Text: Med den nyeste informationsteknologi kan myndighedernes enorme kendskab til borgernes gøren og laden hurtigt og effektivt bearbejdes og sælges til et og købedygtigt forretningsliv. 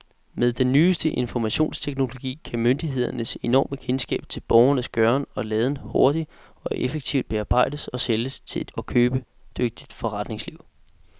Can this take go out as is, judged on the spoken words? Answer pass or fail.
pass